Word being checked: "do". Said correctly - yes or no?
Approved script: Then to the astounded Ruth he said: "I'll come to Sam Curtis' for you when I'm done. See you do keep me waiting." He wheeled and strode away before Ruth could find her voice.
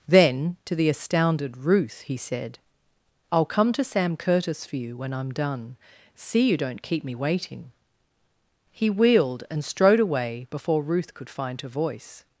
no